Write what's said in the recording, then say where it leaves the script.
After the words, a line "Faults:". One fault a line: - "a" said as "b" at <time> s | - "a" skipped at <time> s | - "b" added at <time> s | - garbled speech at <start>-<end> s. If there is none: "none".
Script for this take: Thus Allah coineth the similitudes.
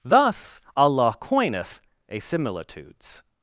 Thus Allah coineth a similitudes.
Faults:
- "the" said as "a" at 2.1 s